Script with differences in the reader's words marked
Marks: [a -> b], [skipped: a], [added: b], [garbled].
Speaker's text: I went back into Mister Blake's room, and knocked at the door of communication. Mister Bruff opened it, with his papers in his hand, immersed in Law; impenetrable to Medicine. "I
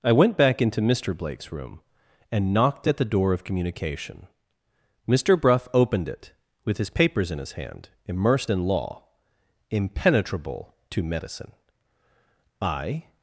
I went back into Mister Blake's room, and knocked at the door of communication. Mister Bruff opened it, with his papers in his hand, immersed in Law; impenetrable to Medicine. "I